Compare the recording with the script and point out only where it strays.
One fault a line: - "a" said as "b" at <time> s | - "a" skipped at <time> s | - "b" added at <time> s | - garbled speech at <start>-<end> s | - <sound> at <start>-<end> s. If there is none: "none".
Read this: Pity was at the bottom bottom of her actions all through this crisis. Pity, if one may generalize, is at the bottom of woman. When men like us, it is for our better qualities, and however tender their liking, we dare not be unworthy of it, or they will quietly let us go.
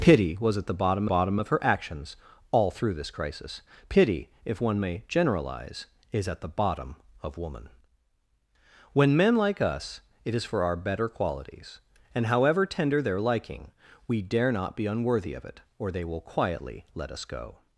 none